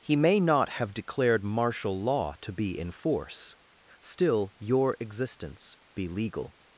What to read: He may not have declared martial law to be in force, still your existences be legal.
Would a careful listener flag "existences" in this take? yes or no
yes